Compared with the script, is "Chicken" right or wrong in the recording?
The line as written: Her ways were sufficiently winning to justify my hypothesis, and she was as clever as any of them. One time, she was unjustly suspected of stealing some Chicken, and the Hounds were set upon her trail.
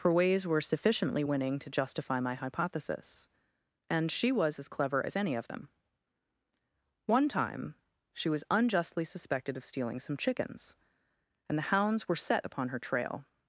wrong